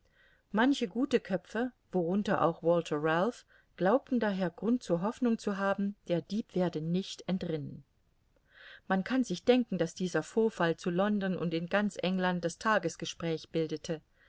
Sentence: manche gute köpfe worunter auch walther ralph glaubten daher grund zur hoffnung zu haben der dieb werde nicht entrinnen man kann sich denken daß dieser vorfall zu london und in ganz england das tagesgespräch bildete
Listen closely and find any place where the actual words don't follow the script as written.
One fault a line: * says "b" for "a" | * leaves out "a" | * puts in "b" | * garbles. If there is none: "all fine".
all fine